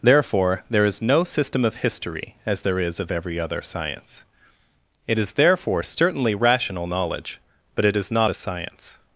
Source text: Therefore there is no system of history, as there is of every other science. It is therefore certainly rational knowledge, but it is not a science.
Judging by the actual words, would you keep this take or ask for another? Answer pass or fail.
pass